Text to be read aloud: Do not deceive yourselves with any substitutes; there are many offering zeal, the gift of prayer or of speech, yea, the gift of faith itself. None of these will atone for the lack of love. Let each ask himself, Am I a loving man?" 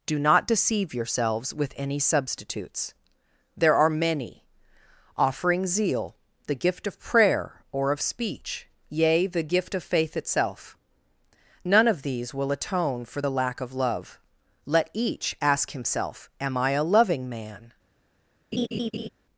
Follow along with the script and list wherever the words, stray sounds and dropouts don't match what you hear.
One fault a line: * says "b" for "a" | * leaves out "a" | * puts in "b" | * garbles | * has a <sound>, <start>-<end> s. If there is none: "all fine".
* has a laugh, 18.5-19.1 s